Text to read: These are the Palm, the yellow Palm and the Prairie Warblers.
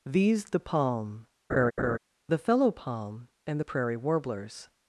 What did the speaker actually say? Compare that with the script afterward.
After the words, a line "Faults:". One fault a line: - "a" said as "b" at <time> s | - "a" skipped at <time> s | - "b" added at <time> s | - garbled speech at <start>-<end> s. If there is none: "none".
These the Palm, the fellow Palm and the Prairie Warblers.
Faults:
- "are" skipped at 0.5 s
- "yellow" said as "fellow" at 2.4 s